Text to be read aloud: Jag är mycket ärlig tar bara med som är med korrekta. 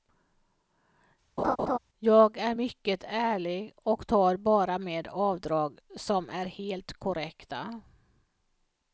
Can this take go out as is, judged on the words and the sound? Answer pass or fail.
fail